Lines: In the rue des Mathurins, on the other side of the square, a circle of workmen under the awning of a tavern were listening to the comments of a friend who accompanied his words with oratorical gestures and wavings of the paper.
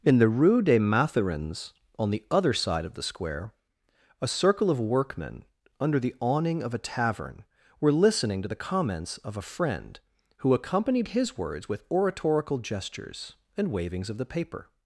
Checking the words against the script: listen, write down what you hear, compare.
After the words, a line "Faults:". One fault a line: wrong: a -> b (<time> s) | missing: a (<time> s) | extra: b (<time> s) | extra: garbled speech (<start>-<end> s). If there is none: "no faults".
In the rue des Mathurins, on the other side of the square, a circle of workmen under the awning of a tavern were listening to the comments of a friend who accompanied his words with oratorical gestures and wavings of the paper.
Faults:
no faults